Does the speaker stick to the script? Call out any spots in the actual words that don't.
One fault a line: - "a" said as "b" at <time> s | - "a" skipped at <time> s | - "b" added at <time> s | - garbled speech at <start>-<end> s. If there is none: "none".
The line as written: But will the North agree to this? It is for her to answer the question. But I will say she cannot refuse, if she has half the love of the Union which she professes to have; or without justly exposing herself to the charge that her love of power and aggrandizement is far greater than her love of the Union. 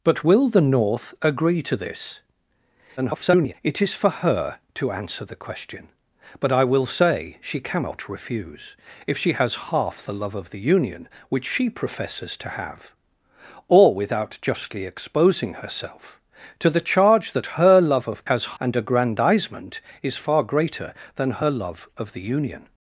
- garbled speech at 3.0-3.5 s
- "power" said as "has" at 18.2 s